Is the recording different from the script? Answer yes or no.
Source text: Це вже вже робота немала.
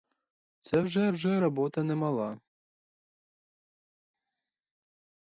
no